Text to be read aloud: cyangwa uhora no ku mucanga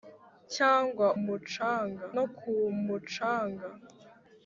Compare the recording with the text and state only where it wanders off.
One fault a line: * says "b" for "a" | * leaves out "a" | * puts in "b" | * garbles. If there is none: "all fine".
* says "mucanga" for "uhora"